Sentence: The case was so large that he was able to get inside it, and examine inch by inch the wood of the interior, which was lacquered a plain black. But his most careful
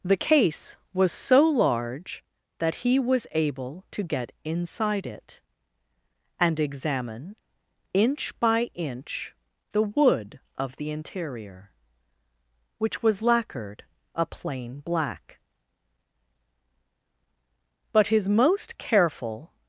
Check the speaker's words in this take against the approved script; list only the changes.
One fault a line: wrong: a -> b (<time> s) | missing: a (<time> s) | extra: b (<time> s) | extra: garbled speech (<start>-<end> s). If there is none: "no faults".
no faults